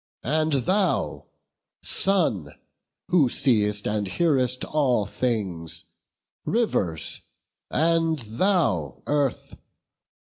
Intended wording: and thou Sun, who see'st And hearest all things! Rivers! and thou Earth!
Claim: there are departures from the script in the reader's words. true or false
false